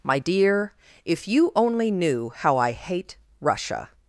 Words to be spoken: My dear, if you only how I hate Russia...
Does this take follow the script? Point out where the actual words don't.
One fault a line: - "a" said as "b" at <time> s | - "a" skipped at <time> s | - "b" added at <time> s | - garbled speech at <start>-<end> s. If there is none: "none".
- "knew" added at 1.9 s